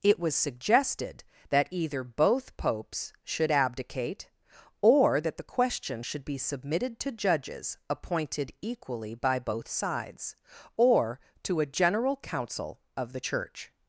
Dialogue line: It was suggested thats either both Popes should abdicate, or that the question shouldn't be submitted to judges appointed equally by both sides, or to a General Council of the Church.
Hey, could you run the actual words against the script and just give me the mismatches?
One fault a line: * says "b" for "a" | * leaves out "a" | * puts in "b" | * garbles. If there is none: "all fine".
* says "that" for "thats"
* says "should" for "shouldn't"